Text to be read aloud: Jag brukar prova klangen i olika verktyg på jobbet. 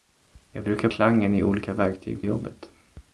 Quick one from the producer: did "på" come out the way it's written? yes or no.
no